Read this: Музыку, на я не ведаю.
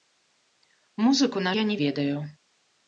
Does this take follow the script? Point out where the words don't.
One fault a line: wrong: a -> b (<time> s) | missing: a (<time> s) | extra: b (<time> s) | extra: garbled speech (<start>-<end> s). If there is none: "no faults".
no faults